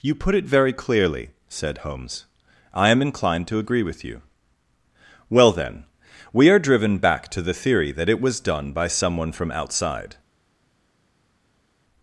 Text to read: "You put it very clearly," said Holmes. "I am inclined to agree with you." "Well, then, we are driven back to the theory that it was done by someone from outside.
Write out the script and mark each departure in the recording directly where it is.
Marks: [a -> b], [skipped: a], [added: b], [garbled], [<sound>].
"You put it very clearly," said Holmes. "I am inclined to agree with you." "Well, then, we are driven back to the theory that it was done by someone from outside.